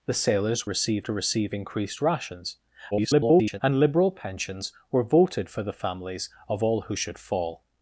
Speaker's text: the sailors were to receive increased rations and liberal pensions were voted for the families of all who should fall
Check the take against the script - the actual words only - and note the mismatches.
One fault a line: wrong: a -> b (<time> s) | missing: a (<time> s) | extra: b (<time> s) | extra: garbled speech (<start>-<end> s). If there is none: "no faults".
wrong: were -> receive (0.7 s)
extra: garbled speech (2.9-3.6 s)